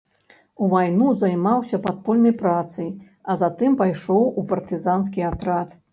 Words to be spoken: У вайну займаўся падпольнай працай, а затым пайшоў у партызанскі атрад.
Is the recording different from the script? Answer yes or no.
no